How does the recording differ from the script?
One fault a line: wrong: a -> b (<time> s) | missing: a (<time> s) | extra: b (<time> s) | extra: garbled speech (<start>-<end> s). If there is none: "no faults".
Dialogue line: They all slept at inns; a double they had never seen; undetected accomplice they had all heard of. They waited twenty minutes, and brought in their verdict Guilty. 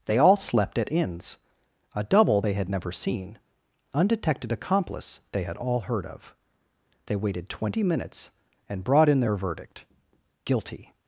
no faults